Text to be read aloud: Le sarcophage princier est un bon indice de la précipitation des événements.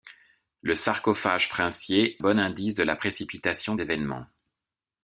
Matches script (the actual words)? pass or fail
fail